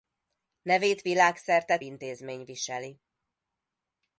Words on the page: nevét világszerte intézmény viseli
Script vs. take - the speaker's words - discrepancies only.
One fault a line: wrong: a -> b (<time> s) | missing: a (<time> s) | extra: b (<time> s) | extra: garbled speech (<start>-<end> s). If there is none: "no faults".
no faults